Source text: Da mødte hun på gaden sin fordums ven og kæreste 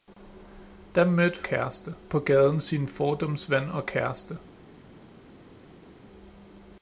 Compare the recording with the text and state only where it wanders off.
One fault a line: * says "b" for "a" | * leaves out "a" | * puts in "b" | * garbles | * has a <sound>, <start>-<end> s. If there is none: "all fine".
* says "kæreste" for "hun"